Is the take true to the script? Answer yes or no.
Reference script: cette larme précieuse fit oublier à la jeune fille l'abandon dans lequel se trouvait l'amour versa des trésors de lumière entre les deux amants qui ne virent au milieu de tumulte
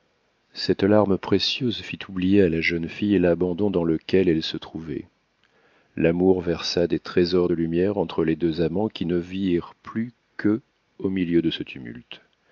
no